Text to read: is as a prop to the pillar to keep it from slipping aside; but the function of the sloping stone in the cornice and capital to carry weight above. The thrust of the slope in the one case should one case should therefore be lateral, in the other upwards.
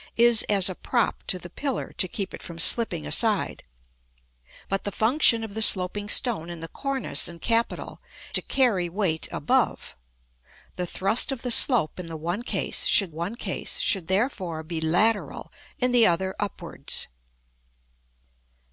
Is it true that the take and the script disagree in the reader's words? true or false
false